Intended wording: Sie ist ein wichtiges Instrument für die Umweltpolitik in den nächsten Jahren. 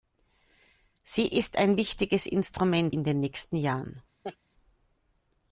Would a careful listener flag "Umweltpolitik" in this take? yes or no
yes